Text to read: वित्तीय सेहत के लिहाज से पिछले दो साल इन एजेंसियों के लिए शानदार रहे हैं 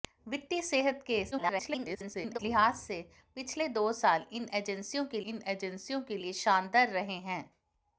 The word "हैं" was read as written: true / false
true